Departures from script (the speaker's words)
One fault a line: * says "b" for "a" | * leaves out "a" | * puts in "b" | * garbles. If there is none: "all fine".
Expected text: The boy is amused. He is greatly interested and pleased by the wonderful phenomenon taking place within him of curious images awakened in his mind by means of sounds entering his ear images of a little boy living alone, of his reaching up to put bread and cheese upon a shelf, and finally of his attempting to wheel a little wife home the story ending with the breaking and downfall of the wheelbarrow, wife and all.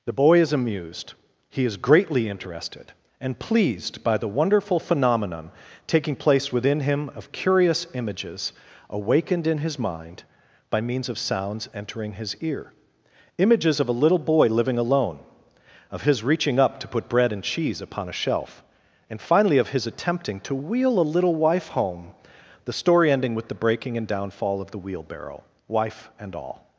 all fine